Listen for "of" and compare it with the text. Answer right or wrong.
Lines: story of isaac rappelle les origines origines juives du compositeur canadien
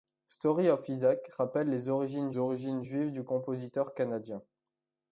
right